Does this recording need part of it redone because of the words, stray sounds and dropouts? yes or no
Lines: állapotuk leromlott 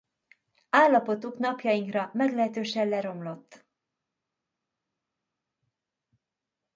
yes